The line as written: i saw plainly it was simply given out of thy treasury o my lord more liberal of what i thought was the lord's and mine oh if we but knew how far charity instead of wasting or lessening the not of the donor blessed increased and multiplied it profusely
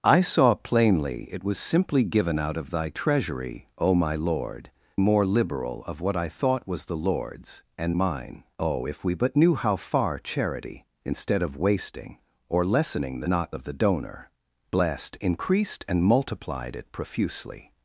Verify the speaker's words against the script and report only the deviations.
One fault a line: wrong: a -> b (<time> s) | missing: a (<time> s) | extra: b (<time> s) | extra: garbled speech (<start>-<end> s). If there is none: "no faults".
no faults